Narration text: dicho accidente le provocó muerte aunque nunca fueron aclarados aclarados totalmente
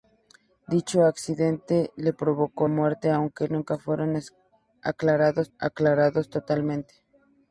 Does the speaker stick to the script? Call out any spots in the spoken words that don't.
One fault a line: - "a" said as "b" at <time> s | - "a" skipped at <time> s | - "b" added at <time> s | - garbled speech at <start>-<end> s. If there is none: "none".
none